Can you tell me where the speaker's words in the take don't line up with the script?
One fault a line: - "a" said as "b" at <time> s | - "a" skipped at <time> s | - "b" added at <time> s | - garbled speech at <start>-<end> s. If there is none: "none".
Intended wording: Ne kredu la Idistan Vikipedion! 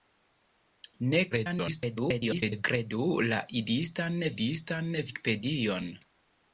- garbled speech at 1.3-2.6 s
- "Idistan" added at 4.4 s